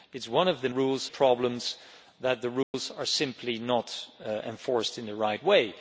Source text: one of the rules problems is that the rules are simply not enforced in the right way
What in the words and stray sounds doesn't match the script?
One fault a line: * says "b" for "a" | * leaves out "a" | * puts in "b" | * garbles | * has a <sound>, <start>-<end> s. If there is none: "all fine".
* has a dropout, 2.6-2.7 s